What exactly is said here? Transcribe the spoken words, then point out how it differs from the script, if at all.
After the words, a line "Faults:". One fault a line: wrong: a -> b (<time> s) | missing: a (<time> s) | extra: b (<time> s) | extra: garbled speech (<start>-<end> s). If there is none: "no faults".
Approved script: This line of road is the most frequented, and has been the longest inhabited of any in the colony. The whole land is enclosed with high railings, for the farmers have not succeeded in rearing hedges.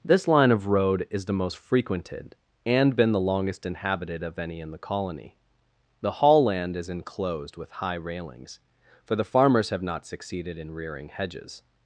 This line of road is the most frequented, and been the longest inhabited of any in the colony. The hall land is enclosed with high railings, for the farmers have not succeeded in rearing hedges.
Faults:
missing: has (3.0 s)
wrong: whole -> hall (6.1 s)